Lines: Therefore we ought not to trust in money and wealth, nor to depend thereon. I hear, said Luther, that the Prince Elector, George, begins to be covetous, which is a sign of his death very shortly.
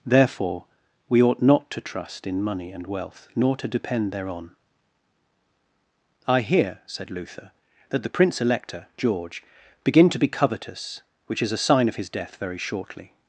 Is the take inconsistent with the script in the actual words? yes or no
yes